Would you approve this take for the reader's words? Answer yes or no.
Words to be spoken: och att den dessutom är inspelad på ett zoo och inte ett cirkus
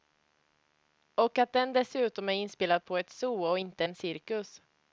no